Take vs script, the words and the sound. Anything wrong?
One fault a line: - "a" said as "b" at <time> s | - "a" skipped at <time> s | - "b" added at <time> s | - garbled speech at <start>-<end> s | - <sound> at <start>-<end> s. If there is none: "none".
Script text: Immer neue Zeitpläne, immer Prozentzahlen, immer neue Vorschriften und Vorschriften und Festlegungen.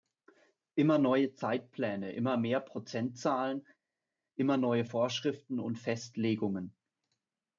- "mehr" added at 2.4 s
- "Vorschriften und" skipped at 5.8 s